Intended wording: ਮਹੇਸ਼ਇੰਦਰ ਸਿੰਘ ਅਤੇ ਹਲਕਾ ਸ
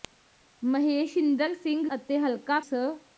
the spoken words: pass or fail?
pass